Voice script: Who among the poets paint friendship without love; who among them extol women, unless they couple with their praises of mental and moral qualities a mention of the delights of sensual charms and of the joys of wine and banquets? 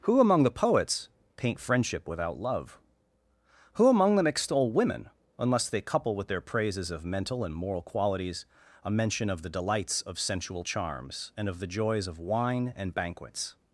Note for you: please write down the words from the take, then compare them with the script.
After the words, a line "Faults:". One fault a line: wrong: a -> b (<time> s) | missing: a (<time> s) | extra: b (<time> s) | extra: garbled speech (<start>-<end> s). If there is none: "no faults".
Who among the poets paint friendship without love; who among them extol women, unless they couple with their praises of mental and moral qualities a mention of the delights of sensual charms and of the joys of wine and banquets?
Faults:
no faults